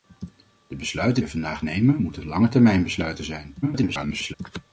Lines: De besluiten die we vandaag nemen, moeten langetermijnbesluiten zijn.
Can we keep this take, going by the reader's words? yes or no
no